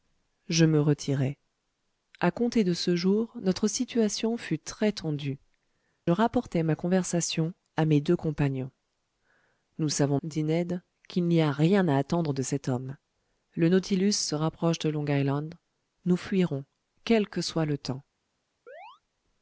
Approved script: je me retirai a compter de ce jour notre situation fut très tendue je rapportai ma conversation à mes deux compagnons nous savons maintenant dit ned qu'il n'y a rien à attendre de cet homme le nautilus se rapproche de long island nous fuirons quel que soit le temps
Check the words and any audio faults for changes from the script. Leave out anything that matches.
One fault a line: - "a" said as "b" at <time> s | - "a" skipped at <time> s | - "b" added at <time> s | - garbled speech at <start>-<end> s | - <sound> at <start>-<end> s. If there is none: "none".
- "je" skipped at 5.4 s
- "maintenant" skipped at 10.2 s
- chirp at 18.7-19.0 s